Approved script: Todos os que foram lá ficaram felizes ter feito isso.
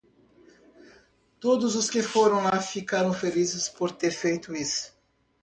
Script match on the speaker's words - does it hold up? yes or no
no